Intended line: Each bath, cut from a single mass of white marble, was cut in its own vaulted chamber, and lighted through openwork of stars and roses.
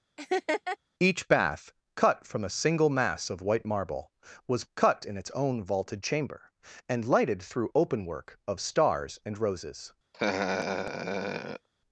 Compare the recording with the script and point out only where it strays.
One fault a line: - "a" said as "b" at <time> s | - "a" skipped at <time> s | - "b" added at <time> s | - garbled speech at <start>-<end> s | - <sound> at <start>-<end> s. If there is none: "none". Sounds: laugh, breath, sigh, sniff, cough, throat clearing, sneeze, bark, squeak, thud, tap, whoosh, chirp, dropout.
- laugh at 0.2-0.8 s
- laugh at 10.1-11.7 s